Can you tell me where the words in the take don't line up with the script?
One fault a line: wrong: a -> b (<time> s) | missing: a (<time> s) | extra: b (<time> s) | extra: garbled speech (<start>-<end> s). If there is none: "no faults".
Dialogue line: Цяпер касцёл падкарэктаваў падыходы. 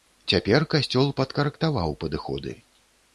no faults